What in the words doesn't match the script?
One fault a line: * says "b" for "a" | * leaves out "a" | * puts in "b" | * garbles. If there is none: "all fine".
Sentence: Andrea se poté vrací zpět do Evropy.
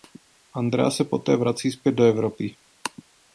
all fine